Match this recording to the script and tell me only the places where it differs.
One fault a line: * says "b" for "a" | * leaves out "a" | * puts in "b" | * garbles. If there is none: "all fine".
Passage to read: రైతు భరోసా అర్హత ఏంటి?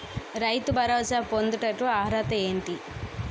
* puts in "పొందుటకు"